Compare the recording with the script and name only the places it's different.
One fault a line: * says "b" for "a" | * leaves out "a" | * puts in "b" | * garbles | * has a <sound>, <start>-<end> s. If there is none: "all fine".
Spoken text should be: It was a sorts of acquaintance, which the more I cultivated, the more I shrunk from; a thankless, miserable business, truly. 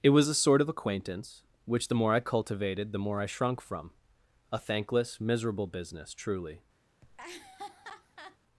* says "sort" for "sorts"
* has a laugh, 7.0-8.4 s